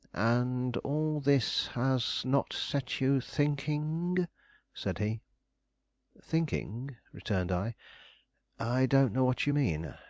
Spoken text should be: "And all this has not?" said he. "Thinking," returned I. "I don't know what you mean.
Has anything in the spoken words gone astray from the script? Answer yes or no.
yes